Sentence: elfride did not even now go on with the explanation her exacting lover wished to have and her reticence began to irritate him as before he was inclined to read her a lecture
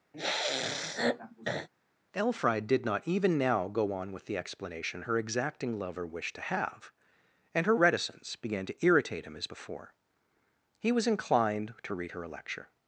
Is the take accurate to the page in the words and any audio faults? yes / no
no